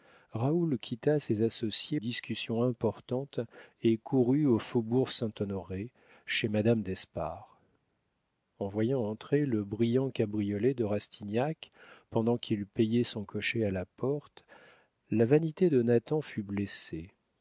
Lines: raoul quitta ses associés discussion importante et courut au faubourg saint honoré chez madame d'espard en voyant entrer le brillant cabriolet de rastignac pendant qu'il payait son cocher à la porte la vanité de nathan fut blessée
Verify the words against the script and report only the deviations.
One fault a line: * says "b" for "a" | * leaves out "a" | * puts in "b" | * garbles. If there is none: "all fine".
all fine